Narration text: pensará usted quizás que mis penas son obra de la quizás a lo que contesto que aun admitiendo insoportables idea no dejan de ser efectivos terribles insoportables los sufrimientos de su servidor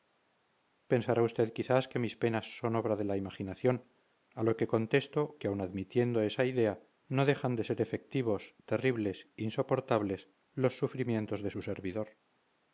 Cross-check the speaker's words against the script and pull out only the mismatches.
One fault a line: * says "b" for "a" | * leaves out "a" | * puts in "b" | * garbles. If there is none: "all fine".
* says "imaginación" for "quizás"
* says "esa" for "insoportables"